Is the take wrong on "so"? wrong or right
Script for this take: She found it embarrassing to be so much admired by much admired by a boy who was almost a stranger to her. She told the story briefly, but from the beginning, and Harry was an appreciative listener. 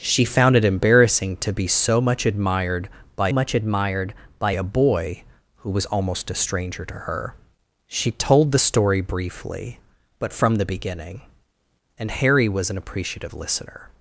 right